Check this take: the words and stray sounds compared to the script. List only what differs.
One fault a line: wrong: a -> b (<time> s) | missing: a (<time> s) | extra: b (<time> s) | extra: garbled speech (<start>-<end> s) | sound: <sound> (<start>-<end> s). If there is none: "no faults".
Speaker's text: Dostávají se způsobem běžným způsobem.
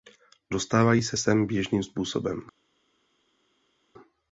wrong: způsobem -> sem (1.2 s)